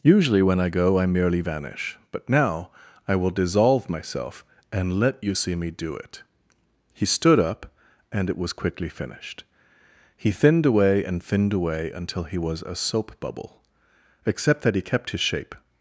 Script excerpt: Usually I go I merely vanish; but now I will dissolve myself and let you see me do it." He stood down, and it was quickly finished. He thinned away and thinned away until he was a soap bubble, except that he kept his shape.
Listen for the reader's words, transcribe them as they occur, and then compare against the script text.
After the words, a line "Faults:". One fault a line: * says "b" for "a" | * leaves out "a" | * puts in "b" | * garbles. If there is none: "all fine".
Usually when I go I merely vanish; but now I will dissolve myself and let you see me do it." He stood up, and it was quickly finished. He thinned away and thinned away until he was a soap bubble, except that he kept his shape.
Faults:
* puts in "when"
* says "up" for "down"